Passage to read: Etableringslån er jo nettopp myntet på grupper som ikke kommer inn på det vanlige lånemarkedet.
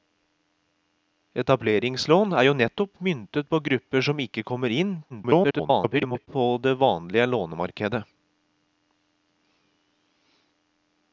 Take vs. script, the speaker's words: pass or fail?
fail